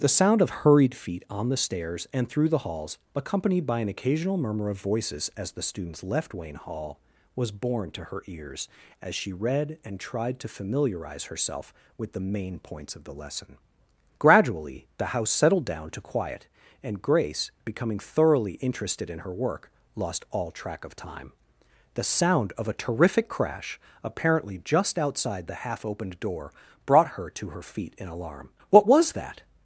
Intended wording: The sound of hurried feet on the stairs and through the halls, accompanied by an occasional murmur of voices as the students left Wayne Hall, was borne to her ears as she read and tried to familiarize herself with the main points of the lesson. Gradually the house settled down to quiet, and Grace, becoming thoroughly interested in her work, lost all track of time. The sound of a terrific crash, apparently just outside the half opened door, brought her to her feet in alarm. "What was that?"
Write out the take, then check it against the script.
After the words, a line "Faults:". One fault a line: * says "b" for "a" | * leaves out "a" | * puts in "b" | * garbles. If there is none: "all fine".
The sound of hurried feet on the stairs and through the halls, accompanied by an occasional murmur of voices as the students left Wayne Hall, was borne to her ears as she read and tried to familiarize herself with the main points of the lesson. Gradually the house settled down to quiet, and Grace, becoming thoroughly interested in her work, lost all track of time. The sound of a terrific crash, apparently just outside the half opened door, brought her to her feet in alarm. "What was that?"
Faults:
all fine